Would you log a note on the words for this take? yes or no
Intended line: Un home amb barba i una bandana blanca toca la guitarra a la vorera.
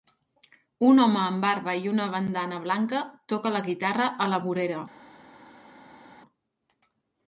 no